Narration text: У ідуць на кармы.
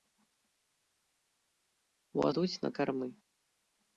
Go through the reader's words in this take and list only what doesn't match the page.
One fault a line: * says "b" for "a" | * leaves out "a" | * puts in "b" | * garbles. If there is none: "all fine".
all fine